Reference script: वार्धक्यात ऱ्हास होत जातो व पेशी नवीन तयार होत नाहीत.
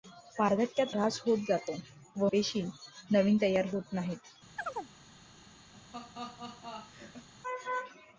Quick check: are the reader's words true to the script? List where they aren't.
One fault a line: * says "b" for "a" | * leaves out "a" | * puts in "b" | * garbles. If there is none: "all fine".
all fine